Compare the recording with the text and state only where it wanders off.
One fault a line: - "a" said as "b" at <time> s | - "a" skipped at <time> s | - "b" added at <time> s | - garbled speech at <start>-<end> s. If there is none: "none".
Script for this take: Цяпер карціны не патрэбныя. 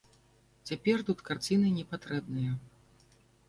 - "тут" added at 1.1 s